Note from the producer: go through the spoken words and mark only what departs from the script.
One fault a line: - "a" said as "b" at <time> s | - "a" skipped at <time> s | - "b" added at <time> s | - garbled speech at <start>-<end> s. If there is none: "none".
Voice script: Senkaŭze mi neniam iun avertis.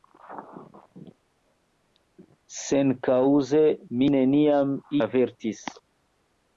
- "iun" skipped at 4.8 s